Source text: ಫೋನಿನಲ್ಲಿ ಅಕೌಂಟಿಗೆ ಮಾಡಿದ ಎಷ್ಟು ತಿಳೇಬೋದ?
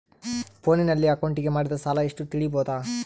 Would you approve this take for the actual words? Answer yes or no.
no